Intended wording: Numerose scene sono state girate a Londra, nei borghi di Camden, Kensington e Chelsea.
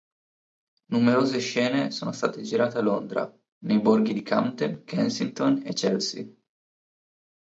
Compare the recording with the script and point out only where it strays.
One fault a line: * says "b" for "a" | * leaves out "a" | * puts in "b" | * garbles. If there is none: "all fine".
all fine